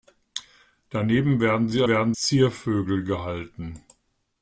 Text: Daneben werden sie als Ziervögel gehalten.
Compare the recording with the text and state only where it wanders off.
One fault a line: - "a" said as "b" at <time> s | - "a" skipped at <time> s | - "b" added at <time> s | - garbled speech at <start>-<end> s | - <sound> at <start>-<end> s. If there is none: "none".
- "als" said as "werden" at 1.9 s